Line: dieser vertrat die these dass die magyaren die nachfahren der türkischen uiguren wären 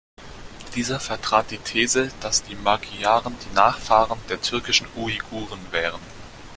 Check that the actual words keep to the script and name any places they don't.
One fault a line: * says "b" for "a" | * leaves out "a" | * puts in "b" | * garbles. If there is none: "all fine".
all fine